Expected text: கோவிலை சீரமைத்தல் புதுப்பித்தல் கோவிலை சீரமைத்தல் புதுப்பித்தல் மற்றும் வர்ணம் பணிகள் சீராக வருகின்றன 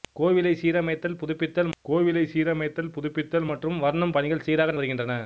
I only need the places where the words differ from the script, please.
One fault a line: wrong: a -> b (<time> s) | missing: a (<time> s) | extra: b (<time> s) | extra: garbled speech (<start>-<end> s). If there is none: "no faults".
no faults